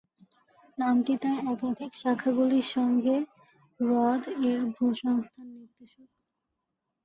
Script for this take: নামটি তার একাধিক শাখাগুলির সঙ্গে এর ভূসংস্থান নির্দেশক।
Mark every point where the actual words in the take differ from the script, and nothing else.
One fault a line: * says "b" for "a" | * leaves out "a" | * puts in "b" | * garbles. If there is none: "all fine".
* puts in "হ্রদ"